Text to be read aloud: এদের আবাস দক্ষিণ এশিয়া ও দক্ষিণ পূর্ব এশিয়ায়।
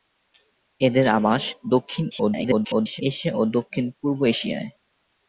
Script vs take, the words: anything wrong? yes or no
yes